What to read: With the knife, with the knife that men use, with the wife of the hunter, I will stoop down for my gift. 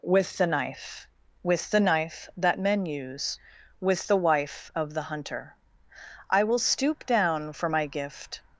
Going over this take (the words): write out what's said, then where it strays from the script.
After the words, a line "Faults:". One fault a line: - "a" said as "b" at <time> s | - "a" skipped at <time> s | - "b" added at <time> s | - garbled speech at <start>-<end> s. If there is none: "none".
With the knife, with the knife that men use, with the wife of the hunter, I will stoop down for my gift.
Faults:
none